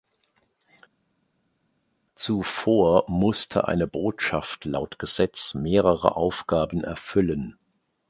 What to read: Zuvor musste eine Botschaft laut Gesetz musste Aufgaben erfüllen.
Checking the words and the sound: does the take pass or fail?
fail